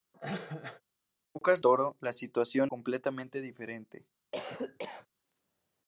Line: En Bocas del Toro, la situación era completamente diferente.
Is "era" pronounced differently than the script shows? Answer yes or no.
yes